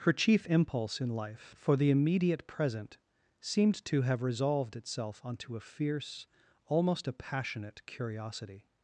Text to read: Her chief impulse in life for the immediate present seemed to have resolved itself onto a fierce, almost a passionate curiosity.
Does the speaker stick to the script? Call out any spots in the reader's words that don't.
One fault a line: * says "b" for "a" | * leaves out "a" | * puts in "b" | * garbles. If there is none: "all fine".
all fine